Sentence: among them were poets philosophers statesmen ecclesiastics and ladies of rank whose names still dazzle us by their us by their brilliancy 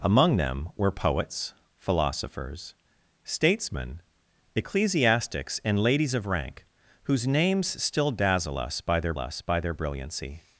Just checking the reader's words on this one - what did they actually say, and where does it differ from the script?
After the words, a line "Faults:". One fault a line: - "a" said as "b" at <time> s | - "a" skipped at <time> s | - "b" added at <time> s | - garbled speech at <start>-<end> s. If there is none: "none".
among them were poets philosophers statesmen ecclesiastics and ladies of rank whose names still dazzle us by their us by their brilliancy
Faults:
none